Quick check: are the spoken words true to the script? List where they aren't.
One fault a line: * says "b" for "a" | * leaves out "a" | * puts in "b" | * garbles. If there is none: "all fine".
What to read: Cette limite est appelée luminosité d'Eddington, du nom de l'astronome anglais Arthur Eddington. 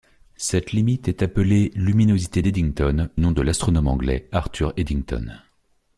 * leaves out "du"